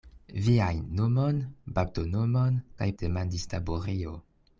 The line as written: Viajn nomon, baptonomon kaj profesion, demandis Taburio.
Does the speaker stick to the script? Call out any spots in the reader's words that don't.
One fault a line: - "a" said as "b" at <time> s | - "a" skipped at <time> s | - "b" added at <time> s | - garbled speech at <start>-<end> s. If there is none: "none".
- "profesion" skipped at 2.9 s